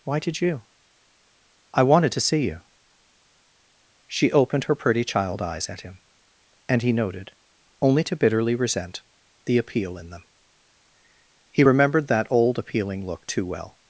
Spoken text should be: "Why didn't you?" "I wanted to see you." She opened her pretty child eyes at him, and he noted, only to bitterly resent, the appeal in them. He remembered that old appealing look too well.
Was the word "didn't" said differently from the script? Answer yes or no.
yes